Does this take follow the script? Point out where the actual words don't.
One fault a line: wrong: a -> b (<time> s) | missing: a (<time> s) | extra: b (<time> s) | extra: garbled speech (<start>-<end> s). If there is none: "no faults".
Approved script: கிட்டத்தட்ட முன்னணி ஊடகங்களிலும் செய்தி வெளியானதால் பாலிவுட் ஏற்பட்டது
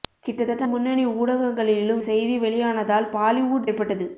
no faults